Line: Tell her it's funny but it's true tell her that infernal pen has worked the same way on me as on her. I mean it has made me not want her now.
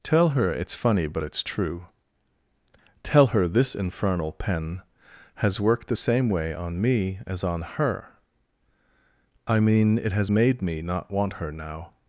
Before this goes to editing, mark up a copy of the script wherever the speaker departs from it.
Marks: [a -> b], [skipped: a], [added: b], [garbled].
Tell her it's funny but it's true tell her [that -> this] infernal pen has worked the same way on me as on her. I mean it has made me not want her now.